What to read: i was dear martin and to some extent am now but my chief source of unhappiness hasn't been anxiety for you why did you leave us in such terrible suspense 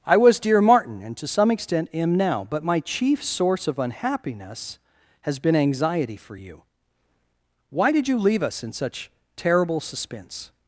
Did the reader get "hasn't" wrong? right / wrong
wrong